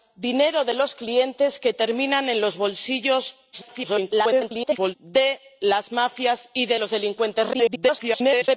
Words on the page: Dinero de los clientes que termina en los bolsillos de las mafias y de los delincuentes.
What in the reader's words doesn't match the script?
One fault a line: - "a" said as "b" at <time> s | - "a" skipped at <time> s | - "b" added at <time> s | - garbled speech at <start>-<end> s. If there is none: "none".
- garbled speech at 3.5-5.0 s
- garbled speech at 7.5-8.5 s